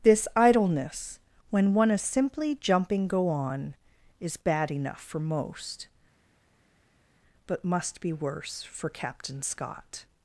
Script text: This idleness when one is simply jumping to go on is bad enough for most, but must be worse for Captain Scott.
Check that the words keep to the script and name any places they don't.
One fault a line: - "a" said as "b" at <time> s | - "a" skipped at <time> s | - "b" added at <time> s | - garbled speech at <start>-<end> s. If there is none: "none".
- "to" skipped at 3.1 s